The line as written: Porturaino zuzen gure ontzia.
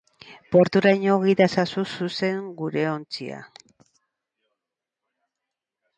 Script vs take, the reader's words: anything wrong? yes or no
yes